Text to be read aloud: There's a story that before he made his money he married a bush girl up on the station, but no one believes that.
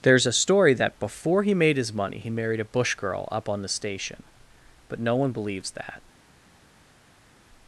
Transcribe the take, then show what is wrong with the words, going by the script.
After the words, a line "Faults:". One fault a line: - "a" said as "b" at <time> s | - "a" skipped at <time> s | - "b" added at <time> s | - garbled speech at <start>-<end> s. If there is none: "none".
There's a story that before he made his money he married a bush girl up on the station, but no one believes that.
Faults:
none